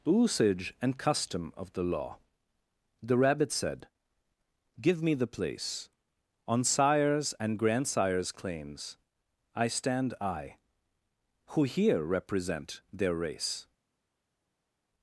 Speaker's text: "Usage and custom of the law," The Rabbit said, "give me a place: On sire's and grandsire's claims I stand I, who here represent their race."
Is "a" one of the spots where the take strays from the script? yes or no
yes